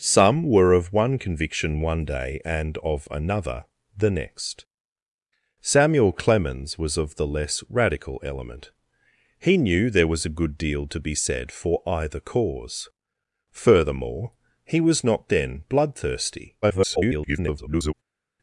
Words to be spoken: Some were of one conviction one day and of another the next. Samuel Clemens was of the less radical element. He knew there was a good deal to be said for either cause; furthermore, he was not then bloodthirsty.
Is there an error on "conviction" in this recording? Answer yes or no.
no